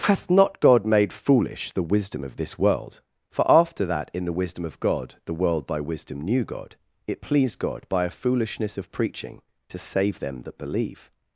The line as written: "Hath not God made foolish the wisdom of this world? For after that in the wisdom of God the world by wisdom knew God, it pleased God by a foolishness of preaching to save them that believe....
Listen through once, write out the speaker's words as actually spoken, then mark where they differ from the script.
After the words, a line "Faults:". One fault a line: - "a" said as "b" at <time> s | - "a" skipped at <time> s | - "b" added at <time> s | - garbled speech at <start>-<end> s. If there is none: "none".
"Hath not God made foolish the wisdom of this world? For after that in the wisdom of God the world by wisdom knew God, it pleased God by a foolishness of preaching to save them that believe....
Faults:
none